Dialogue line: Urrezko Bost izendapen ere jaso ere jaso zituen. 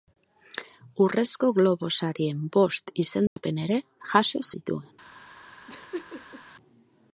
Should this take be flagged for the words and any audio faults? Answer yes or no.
yes